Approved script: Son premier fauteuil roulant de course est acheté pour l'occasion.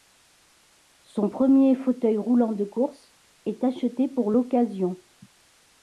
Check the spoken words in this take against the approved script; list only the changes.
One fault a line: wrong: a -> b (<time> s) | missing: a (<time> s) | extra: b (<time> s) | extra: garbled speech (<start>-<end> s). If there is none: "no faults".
no faults